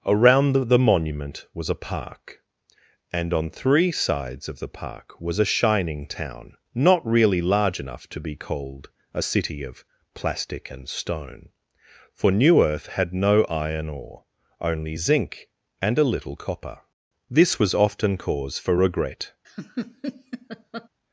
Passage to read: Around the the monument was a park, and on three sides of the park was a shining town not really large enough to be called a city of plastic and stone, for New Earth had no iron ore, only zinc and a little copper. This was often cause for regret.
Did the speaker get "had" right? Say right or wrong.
right